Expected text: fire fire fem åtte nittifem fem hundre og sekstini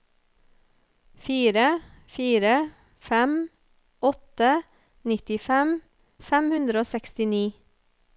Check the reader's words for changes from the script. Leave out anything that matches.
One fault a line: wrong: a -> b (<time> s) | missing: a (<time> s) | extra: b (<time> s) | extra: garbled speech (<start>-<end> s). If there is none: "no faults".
no faults